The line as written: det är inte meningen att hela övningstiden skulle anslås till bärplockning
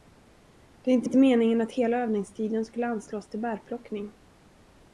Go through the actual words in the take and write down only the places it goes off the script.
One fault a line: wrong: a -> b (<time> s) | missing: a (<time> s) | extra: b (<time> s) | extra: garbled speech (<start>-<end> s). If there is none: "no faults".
extra: inte (1.0 s)